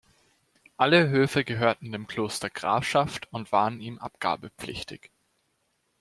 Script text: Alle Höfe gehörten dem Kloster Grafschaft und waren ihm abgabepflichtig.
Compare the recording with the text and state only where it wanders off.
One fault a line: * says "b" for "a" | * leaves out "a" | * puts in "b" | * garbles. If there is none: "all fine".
all fine